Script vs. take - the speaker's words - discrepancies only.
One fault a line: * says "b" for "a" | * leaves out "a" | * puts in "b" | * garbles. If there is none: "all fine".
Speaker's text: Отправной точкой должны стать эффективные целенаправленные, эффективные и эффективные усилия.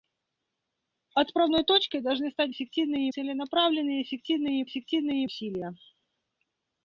all fine